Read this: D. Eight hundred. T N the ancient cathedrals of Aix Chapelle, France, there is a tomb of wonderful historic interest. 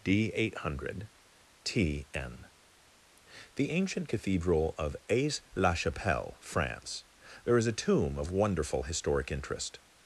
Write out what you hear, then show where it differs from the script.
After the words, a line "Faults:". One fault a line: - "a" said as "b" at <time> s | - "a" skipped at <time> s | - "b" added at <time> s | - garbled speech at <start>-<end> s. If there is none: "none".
D. Eight hundred. T N the ancient cathedral of Aix la Chapelle, France, there is a tomb of wonderful historic interest.
Faults:
- "cathedrals" said as "cathedral" at 4.1 s
- "la" added at 5.5 s